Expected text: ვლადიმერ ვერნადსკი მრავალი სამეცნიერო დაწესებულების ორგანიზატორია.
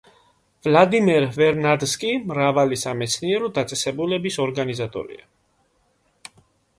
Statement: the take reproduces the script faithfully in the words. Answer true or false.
true